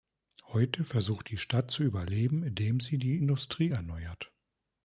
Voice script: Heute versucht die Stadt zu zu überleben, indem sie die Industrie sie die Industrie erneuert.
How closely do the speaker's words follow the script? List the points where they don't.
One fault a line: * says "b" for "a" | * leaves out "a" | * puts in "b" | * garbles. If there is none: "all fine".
* leaves out "zu"
* leaves out "sie die Industrie"